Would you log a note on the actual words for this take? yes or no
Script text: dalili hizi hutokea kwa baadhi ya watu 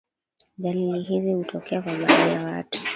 no